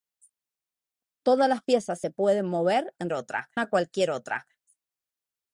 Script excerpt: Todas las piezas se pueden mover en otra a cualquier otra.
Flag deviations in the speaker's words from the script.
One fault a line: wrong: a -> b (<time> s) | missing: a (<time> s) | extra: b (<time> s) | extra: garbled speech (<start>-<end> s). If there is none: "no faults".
no faults